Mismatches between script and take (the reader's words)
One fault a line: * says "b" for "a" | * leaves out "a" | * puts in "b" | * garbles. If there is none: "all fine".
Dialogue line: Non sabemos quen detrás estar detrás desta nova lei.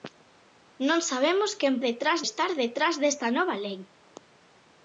all fine